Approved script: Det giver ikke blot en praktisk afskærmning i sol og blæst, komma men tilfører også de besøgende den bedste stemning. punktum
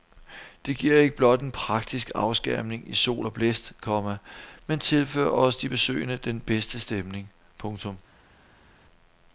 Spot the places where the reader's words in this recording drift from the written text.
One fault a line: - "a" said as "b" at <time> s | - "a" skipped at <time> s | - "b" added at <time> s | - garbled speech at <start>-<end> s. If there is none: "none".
none